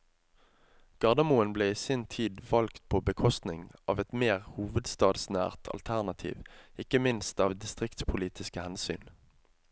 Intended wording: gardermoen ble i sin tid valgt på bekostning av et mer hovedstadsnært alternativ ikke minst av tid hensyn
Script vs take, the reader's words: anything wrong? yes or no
yes